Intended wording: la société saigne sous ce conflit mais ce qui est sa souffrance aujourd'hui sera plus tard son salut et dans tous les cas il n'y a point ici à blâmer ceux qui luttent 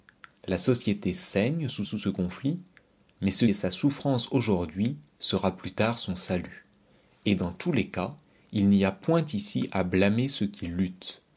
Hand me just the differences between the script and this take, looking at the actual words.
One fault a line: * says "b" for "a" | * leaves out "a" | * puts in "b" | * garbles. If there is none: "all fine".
* puts in "sous"
* leaves out "qui"